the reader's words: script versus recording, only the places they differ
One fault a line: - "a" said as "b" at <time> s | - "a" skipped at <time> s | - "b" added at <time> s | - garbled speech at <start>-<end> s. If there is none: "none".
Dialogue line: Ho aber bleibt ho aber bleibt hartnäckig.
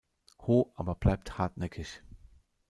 - "ho aber bleibt" skipped at 1.4 s